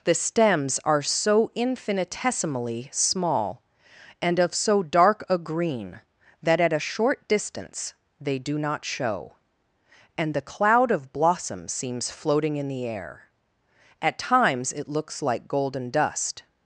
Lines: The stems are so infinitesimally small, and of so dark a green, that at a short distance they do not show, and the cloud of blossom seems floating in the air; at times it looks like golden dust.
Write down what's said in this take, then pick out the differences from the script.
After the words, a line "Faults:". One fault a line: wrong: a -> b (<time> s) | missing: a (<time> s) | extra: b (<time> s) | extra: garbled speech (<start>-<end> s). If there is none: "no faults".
The stems are so infinitesimally small, and of so dark a green, that at a short distance they do not show, and the cloud of blossom seems floating in the air; at times it looks like golden dust.
Faults:
no faults